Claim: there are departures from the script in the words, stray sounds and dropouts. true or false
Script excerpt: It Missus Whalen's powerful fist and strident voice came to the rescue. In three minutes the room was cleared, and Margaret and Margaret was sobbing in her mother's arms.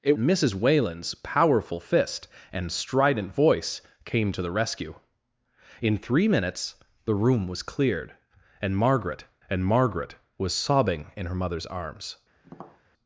true